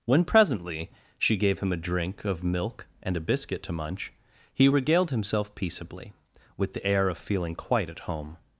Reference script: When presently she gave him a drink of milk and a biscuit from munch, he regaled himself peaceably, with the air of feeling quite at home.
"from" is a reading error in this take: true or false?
true